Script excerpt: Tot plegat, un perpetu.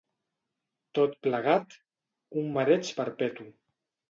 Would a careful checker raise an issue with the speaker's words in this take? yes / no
yes